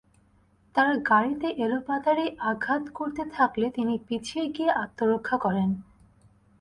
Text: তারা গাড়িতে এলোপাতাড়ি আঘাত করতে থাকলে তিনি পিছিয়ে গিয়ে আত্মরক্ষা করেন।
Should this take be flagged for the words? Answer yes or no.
no